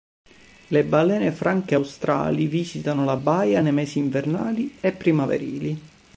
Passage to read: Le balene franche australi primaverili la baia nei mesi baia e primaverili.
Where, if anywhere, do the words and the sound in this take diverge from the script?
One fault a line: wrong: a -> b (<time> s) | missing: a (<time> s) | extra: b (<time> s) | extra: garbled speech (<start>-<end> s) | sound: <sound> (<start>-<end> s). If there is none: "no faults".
wrong: primaverili -> visitano (2.5 s)
wrong: baia -> invernali (4.0 s)